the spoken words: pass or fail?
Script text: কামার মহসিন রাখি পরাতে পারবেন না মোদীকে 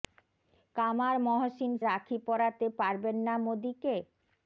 pass